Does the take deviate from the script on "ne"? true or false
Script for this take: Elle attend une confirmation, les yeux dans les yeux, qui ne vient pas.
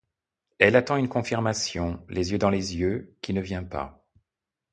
false